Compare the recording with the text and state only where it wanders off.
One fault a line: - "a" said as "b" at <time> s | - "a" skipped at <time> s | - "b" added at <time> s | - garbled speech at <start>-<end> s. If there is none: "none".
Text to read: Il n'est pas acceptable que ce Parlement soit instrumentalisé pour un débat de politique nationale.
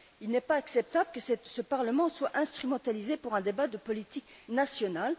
none